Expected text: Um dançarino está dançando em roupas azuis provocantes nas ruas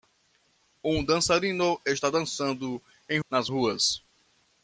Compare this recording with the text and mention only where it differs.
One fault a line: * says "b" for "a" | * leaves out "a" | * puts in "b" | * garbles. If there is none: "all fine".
* leaves out "roupas azuis provocantes"